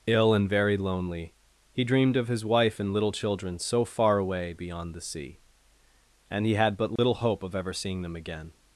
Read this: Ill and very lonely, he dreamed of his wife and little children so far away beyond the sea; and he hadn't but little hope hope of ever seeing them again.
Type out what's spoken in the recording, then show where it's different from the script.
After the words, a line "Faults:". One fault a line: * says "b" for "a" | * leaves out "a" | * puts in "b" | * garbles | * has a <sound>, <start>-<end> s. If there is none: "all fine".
Ill and very lonely, he dreamed of his wife and little children so far away beyond the sea; and he had but little hope of ever seeing them again.
Faults:
* says "had" for "hadn't"
* has a dropout, 7.0-7.0 s
* leaves out "hope"